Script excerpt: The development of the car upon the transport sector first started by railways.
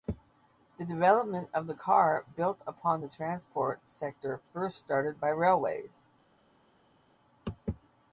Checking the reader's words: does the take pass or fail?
fail